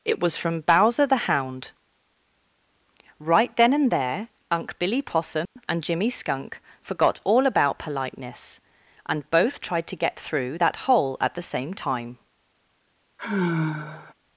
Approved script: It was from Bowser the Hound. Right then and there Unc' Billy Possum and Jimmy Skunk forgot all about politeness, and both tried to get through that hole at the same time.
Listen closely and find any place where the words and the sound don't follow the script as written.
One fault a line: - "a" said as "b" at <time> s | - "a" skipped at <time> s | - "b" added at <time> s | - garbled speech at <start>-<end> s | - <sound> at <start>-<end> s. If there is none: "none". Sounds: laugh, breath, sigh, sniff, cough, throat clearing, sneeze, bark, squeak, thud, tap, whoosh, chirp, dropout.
- dropout at 5.5-5.6 s
- sigh at 13.2-14.1 s